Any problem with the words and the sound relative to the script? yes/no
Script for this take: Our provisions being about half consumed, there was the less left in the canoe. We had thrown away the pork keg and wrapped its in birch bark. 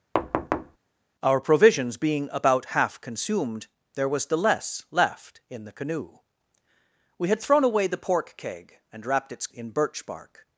yes